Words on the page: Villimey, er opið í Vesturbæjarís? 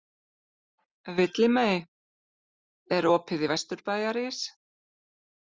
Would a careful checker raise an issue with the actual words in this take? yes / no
no